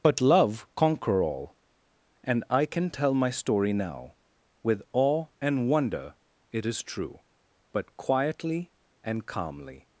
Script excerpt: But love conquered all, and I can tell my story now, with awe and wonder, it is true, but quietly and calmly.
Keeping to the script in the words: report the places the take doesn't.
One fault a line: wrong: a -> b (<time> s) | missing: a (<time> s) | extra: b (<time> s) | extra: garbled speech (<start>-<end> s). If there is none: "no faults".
wrong: conquered -> conquer (0.8 s)